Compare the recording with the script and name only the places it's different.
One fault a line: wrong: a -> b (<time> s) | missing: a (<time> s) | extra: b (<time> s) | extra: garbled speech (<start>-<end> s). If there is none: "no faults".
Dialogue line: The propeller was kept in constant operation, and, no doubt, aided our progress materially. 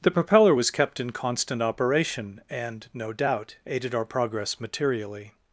no faults